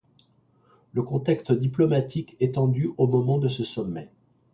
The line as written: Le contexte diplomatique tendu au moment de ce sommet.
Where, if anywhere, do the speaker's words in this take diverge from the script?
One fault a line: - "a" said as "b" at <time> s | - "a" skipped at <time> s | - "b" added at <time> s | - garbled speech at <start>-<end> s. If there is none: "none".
- "est" added at 2.4 s